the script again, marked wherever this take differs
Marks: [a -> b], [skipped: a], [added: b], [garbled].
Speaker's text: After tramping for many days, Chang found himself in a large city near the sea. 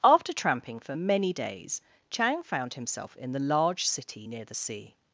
After tramping for many days, Chang found himself in [a -> the] large city near the sea.